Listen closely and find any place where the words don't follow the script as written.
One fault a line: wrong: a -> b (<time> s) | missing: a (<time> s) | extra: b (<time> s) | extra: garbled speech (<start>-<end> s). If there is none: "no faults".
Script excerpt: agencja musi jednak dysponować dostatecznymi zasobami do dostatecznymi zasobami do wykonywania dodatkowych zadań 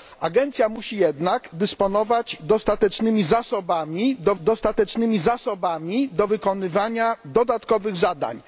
no faults